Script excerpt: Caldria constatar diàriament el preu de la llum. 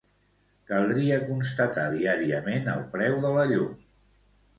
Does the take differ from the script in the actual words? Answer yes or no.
no